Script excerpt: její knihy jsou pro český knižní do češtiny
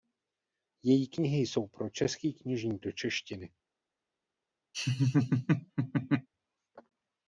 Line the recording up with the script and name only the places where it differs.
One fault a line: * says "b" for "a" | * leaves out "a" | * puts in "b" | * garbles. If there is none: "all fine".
all fine